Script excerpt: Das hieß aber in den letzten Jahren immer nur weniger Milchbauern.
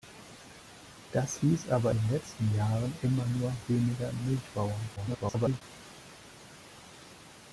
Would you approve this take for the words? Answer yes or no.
no